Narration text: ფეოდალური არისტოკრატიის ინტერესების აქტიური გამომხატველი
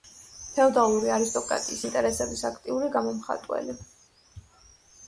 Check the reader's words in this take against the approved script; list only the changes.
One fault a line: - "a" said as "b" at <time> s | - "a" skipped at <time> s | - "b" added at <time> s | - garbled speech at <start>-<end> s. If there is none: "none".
none